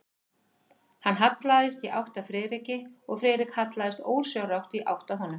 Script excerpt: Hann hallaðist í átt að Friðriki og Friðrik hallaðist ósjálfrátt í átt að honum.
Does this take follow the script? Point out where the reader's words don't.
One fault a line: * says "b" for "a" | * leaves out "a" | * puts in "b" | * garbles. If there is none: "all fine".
all fine